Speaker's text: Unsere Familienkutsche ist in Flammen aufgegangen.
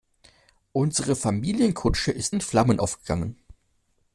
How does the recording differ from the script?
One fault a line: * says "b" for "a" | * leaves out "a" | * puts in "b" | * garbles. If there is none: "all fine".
all fine